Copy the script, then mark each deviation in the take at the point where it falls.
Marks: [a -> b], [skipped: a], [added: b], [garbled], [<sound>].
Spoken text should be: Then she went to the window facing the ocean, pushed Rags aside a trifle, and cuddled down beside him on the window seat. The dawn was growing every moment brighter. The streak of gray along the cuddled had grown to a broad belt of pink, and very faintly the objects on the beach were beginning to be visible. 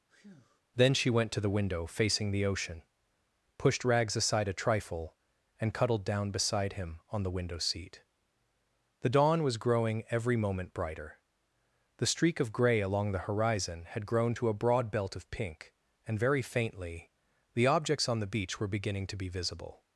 [breath] Then she went to the window facing the ocean, pushed Rags aside a trifle, and cuddled down beside him on the window seat. The dawn was growing every moment brighter. The streak of gray along the [cuddled -> horizon] had grown to a broad belt of pink, and very faintly the objects on the beach were beginning to be visible.